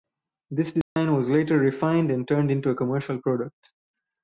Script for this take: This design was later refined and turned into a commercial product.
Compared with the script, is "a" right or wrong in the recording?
right